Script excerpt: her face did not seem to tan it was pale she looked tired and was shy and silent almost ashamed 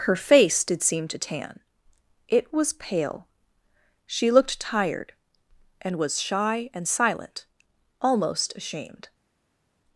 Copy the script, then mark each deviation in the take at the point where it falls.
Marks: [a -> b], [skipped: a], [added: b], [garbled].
her face did [skipped: not] seem to tan it was pale she looked tired and was shy and silent almost ashamed